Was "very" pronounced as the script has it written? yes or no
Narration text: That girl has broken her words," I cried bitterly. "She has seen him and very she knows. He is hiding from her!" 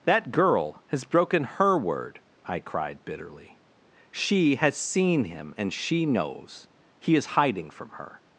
no